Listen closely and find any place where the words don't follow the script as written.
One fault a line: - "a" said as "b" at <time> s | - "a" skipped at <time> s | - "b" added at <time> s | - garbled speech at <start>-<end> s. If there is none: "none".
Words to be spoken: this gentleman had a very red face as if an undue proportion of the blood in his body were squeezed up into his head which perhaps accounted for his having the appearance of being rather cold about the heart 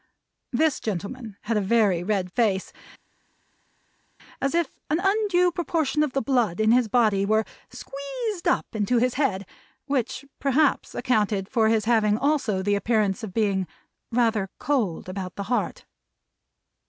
- "also" added at 12.2 s